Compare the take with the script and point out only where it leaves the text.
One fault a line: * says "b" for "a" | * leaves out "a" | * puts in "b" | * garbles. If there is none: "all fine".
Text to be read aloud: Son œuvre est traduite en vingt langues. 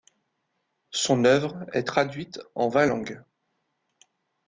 all fine